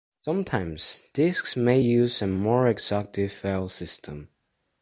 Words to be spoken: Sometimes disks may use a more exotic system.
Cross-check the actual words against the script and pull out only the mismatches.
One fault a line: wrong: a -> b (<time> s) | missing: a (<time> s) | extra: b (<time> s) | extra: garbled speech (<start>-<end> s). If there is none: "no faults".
extra: file (3.3 s)